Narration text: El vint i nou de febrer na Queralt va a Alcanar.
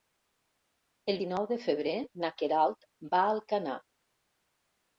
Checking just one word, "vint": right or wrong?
wrong